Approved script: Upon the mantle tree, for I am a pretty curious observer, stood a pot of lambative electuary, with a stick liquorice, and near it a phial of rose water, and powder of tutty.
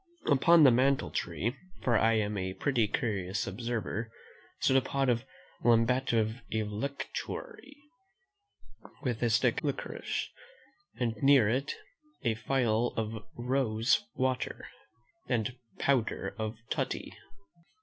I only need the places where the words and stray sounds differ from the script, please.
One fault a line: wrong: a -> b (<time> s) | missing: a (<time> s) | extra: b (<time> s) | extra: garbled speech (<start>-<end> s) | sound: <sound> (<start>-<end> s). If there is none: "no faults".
no faults